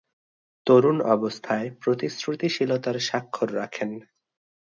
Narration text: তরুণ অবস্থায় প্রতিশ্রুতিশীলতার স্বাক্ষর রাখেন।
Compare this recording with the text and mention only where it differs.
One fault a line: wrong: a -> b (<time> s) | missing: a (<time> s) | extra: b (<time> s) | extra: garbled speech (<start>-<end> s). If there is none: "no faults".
no faults